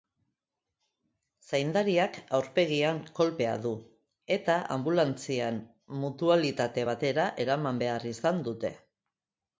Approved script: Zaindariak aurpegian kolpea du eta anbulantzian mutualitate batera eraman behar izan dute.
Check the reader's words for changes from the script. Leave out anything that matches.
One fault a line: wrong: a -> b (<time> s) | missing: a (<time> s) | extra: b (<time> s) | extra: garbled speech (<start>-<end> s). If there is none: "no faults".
no faults